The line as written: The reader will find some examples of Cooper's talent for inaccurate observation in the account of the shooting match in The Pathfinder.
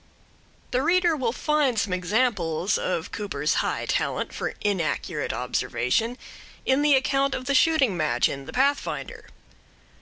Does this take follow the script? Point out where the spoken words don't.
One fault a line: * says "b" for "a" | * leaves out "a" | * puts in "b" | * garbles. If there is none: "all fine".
* puts in "high"